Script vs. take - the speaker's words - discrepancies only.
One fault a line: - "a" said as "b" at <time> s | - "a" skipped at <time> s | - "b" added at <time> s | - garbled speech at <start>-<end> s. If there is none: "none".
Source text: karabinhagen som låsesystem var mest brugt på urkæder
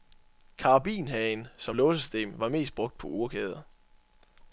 none